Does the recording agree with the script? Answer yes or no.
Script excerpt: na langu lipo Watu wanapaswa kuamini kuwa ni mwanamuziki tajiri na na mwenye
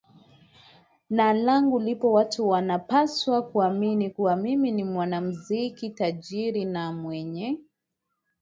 no